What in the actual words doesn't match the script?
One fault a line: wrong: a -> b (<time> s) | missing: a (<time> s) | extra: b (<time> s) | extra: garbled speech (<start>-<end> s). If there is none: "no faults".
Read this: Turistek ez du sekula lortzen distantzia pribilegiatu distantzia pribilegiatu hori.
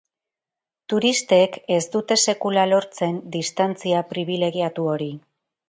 wrong: du -> dute (2.0 s)
missing: distantzia pribilegiatu (4.9 s)